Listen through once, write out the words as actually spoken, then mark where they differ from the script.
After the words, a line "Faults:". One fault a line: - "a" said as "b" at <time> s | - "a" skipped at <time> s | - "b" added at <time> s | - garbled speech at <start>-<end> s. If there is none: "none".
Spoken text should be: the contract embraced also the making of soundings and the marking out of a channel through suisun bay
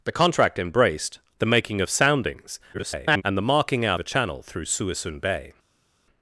the contract embraced the making of soundings [garbled] and the marking out a channel through suisun bay
Faults:
- "also" skipped at 1.2 s
- garbled speech at 2.7-3.2 s
- "of" skipped at 4.0 s